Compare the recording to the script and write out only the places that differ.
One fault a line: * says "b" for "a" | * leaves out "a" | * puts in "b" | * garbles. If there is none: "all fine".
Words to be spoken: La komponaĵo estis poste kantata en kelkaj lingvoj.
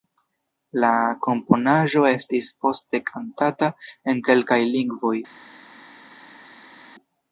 all fine